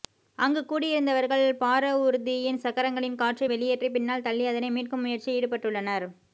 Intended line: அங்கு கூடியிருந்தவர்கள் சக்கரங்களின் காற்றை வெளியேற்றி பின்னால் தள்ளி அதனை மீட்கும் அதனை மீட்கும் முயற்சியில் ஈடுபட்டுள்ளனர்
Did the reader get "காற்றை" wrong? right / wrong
right